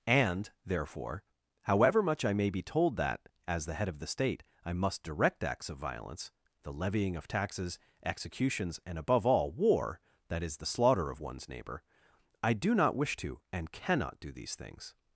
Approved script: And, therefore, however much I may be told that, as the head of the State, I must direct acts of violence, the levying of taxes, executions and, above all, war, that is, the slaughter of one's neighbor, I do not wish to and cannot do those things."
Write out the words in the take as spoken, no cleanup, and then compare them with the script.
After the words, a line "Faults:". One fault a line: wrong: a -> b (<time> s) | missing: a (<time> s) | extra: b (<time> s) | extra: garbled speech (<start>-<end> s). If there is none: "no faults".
And, therefore, however much I may be told that, as the head of the State, I must direct acts of violence, the levying of taxes, executions and, above all, war, that is, the slaughter of one's neighbor, I do not wish to and cannot do these things."
Faults:
wrong: those -> these (14.3 s)